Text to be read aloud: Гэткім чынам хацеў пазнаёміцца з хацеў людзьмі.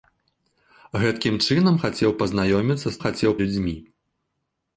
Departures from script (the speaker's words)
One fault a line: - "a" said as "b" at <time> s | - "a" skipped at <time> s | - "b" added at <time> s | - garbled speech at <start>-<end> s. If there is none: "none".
none